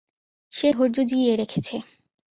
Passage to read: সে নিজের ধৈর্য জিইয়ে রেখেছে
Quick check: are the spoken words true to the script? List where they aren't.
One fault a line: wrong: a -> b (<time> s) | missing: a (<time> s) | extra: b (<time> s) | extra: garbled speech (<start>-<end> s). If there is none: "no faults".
missing: নিজের (0.7 s)